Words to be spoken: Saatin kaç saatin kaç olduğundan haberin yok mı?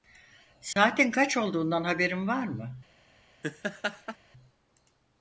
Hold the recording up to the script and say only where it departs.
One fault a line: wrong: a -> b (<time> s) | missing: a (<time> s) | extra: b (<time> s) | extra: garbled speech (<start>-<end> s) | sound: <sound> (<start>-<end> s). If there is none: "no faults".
sound: dropout (0.7-0.8 s)
missing: saatin kaç (1.4 s)
wrong: yok -> var (2.3 s)
sound: laugh (3.4-4.2 s)